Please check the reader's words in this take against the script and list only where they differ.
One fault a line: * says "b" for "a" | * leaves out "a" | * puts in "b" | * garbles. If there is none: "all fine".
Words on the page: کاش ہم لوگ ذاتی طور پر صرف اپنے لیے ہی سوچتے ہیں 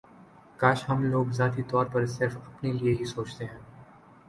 all fine